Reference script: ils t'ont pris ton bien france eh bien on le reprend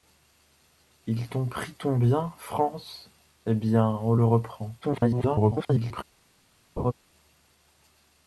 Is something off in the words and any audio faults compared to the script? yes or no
yes